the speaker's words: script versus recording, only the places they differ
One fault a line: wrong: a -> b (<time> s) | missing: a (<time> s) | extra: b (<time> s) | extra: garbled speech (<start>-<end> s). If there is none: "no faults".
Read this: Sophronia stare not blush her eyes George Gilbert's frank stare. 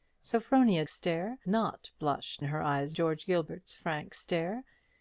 no faults